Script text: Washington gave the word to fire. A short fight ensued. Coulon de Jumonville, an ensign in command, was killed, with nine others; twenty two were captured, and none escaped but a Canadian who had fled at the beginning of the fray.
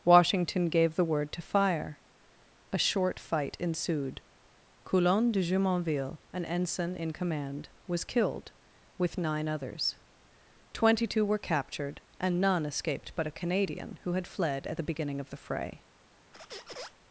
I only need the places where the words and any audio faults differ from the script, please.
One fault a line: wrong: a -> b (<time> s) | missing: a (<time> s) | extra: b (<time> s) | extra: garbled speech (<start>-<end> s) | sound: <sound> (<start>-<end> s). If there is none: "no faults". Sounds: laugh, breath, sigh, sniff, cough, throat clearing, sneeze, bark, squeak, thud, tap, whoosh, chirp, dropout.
sound: squeak (16.3-17.0 s)